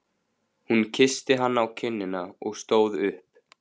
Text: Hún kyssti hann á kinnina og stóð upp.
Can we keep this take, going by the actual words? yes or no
yes